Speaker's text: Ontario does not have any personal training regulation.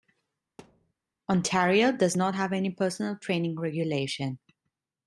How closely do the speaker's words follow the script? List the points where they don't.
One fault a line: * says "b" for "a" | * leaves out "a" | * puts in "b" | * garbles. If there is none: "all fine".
all fine